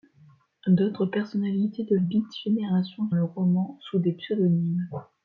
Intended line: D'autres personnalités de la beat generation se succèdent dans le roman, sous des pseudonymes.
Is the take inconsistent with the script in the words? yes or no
yes